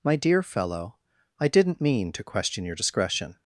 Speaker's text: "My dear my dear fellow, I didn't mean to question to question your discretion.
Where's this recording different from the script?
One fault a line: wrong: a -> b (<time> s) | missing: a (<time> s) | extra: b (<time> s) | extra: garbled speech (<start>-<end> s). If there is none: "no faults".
missing: my dear (0.4 s)
missing: to question (2.6 s)